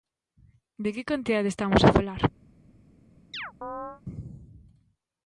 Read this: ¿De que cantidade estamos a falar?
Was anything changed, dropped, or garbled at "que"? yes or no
no